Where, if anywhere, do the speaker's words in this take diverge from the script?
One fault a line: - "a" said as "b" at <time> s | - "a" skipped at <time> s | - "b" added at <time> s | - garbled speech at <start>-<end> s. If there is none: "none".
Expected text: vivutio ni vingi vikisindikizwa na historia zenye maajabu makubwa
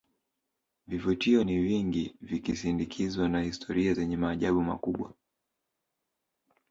none